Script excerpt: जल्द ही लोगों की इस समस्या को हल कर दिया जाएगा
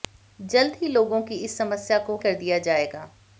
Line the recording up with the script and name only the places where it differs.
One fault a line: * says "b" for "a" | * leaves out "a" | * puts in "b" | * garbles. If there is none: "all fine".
* leaves out "हल"